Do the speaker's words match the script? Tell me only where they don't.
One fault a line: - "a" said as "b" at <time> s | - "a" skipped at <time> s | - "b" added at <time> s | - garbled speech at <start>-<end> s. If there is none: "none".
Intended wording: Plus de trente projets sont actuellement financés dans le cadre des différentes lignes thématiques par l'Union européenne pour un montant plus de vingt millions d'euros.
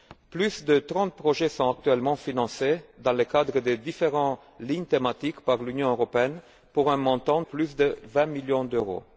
none